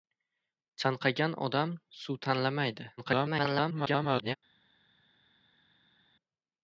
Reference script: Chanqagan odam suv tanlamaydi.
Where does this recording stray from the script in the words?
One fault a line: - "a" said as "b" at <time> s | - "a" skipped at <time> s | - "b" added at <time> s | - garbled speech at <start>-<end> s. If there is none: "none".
- garbled speech at 3.0-4.4 s